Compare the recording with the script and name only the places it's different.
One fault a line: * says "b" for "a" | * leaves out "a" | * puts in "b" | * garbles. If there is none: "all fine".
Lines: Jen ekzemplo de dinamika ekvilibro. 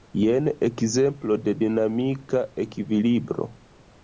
all fine